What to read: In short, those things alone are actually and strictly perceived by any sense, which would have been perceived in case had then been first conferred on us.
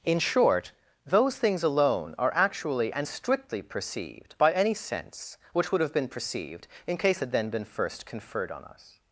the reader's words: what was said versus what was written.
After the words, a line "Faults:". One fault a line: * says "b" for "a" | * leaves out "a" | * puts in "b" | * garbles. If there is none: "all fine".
In short, those things alone are actually and strictly perceived by any sense, which would have been perceived in case had then been first conferred on us.
Faults:
all fine